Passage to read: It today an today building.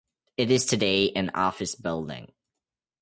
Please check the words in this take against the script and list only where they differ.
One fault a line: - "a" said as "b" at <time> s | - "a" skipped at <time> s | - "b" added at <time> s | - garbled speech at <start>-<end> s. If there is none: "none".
- "is" added at 0.5 s
- "today" said as "office" at 1.4 s